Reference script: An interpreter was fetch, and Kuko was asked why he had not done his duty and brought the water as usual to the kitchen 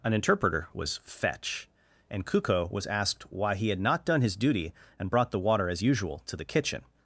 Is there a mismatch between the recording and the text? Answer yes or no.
no